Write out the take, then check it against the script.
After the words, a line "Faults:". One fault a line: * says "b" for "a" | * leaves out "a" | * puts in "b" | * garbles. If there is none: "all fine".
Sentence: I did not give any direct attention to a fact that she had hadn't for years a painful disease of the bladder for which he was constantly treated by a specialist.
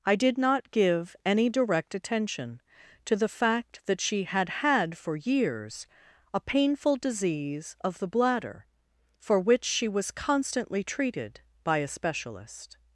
I did not give any direct attention to the fact that she had had for years a painful disease of the bladder for which she was constantly treated by a specialist.
Faults:
* says "the" for "a"
* says "had" for "hadn't"
* says "she" for "he"